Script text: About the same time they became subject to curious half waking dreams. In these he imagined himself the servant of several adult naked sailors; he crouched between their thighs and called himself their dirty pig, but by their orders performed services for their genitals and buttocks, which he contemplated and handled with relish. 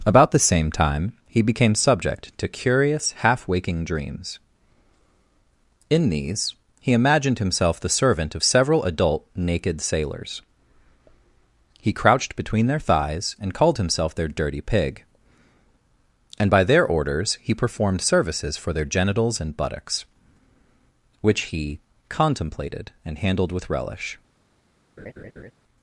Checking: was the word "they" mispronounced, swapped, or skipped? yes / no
yes